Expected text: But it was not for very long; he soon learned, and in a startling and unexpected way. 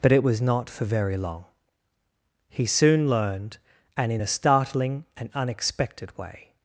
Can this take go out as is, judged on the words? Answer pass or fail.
pass